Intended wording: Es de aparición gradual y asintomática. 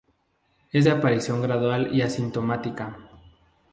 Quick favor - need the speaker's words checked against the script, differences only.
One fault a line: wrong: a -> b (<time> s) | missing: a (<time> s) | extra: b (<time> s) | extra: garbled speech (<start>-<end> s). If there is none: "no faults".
no faults